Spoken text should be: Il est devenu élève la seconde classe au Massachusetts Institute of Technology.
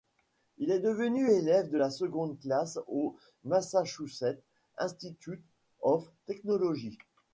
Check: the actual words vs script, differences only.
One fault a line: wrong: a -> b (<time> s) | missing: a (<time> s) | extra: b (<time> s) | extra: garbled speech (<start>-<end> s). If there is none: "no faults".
extra: de (1.7 s)